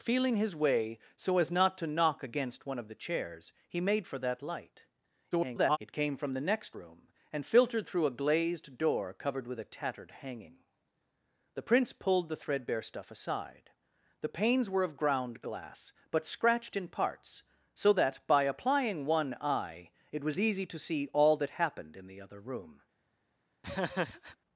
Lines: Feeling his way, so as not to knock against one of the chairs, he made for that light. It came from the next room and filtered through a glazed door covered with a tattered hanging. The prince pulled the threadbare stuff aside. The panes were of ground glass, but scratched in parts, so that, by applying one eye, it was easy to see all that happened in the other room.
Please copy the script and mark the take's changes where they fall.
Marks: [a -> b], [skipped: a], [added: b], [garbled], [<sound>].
Feeling his way, so as not to knock against one of the chairs, he made for that light. [garbled] It came from the next room and filtered through a glazed door covered with a tattered hanging. The prince pulled the threadbare stuff aside. The panes were of ground glass, but scratched in parts, so that, by applying one eye, it was easy to see all that happened in the other room. [laugh]